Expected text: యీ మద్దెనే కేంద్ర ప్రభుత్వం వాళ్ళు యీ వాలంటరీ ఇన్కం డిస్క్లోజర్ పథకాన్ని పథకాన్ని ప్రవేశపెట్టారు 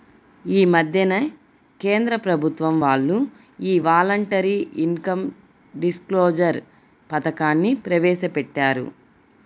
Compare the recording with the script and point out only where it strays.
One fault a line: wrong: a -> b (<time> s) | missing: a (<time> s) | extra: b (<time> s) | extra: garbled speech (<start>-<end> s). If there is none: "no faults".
missing: పథకాన్ని (7.7 s)